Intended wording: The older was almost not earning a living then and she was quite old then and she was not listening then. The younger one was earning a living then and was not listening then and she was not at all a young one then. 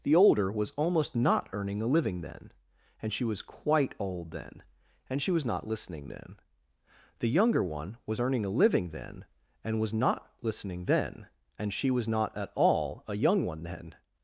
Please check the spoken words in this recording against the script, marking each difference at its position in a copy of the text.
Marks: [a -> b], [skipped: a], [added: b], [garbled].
The older was almost not earning a living then and she was quite old then and she was not listening then. The younger one was earning a living then and was not listening then and she was not at all a young one then.